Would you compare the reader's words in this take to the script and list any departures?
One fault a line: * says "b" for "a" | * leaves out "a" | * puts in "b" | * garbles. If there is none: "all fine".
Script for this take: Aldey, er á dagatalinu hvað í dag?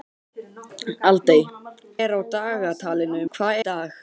all fine